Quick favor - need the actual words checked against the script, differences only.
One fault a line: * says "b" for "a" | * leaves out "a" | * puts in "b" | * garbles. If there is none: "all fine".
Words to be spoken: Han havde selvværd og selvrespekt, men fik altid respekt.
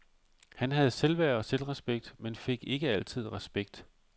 * puts in "ikke"